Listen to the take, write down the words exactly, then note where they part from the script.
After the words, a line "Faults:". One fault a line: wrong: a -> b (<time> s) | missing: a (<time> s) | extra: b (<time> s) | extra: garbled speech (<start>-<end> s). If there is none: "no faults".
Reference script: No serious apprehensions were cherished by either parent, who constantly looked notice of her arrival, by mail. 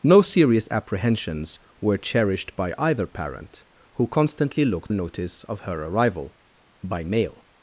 No serious apprehensions were cherished by either parent, who constantly looked notice of her arrival, by mail.
Faults:
no faults